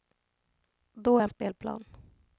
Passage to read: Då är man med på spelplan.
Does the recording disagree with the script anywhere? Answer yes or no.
yes